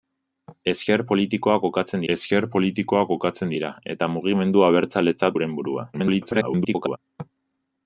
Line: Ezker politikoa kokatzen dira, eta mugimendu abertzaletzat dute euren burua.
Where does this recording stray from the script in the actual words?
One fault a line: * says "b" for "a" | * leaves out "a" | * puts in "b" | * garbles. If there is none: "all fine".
* puts in "ezker politikoa kokatzen"
* leaves out "dute"
* garbles